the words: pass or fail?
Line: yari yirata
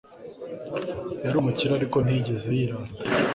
fail